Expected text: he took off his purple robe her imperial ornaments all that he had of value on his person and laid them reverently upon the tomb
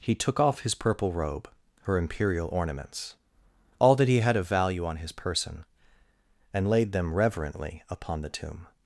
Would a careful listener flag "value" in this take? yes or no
no